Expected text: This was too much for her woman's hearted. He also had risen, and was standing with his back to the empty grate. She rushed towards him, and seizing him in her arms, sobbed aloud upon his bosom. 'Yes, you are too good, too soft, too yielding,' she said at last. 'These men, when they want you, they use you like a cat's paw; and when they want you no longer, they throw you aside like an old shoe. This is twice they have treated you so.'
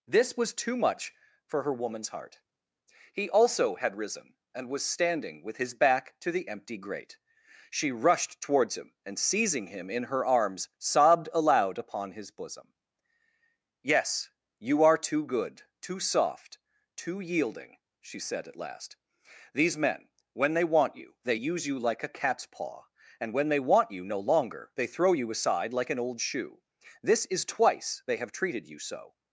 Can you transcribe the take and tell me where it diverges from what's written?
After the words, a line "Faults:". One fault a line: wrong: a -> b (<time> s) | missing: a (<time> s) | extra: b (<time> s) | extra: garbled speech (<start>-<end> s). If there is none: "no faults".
This was too much for her woman's heart. He also had risen, and was standing with his back to the empty grate. She rushed towards him, and seizing him in her arms, sobbed aloud upon his bosom. 'Yes, you are too good, too soft, too yielding,' she said at last. 'These men, when they want you, they use you like a cat's paw; and when they want you no longer, they throw you aside like an old shoe. This is twice they have treated you so.'
Faults:
wrong: hearted -> heart (2.1 s)